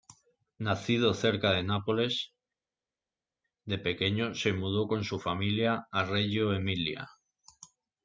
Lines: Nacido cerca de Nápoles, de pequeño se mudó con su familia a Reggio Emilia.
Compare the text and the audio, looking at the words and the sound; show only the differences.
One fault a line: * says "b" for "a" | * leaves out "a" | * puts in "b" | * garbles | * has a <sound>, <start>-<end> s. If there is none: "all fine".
all fine